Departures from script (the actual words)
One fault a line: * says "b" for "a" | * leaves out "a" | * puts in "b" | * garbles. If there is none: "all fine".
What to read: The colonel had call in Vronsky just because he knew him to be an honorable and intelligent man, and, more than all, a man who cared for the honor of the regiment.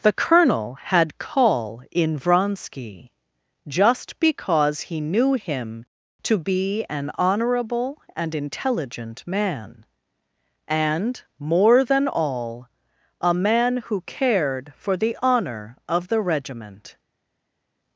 all fine